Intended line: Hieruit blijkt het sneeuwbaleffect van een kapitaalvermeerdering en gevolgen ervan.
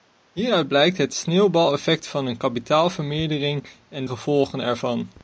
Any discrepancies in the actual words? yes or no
no